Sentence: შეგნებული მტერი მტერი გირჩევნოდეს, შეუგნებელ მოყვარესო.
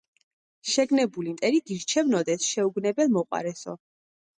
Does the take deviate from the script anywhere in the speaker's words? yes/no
yes